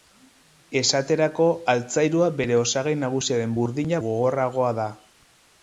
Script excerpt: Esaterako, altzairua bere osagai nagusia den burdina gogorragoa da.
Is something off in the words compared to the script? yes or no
no